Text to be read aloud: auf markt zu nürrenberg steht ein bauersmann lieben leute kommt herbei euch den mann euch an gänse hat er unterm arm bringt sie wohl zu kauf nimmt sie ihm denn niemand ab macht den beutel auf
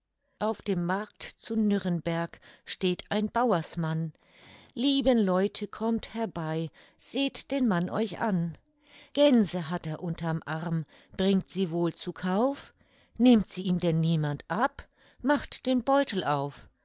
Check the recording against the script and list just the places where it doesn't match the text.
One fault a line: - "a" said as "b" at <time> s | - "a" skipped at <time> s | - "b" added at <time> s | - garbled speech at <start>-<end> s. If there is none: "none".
- "dem" added at 0.6 s
- "euch" said as "seht" at 7.0 s